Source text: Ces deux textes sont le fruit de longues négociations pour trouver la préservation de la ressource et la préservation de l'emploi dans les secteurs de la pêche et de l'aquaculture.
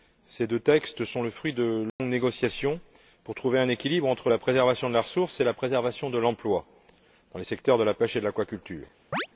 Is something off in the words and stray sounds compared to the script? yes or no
yes